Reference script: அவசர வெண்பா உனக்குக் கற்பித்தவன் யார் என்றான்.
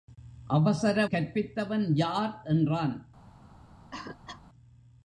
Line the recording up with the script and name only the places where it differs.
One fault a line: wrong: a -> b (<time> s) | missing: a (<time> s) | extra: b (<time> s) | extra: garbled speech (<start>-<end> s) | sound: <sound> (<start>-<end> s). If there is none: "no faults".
missing: வெண்பா உனக்குக் (1.1 s)
sound: cough (3.9-4.4 s)